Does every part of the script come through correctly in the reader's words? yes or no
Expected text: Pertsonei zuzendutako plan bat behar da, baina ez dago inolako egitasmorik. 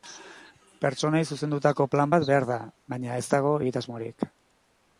no